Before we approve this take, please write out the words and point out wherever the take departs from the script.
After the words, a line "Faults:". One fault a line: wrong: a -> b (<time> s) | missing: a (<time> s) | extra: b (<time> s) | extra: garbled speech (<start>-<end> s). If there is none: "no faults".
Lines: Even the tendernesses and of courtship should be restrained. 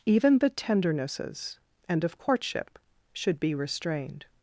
Even the tendernesses and of courtship should be restrained.
Faults:
no faults